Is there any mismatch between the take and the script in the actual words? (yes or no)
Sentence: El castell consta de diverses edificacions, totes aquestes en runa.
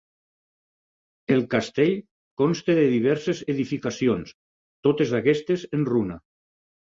no